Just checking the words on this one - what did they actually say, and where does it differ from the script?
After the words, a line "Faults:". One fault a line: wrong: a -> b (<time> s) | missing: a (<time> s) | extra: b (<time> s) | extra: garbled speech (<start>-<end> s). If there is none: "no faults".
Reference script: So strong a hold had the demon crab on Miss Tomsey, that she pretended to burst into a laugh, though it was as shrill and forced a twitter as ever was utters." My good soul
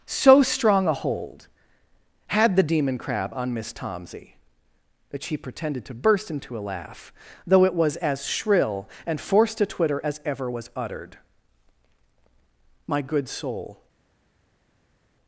So strong a hold had the demon crab on Miss Tomsey, that she pretended to burst into a laugh, though it was as shrill and forced a twitter as ever was uttered." My good soul
Faults:
wrong: utters -> uttered (10.7 s)